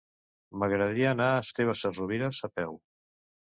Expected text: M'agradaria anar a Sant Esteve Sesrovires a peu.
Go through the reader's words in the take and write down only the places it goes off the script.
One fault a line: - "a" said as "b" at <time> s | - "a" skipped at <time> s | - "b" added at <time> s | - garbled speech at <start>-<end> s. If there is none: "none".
- "Sant" skipped at 1.4 s